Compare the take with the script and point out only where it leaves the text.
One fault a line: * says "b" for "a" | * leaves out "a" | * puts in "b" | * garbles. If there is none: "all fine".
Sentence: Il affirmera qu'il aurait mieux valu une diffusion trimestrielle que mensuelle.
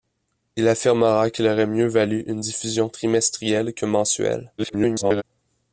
* garbles